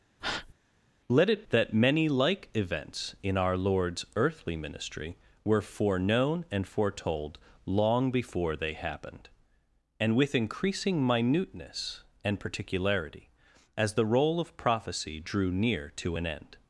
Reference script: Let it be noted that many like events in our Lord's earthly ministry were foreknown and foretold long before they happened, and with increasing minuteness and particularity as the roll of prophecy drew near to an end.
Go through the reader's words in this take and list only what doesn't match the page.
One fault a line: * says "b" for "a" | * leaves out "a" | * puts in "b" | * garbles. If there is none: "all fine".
* leaves out "be noted"